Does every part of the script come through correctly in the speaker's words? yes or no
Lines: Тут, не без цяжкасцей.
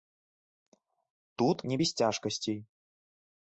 yes